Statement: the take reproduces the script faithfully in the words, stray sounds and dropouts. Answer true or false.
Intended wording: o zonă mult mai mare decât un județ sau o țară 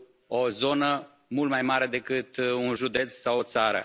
true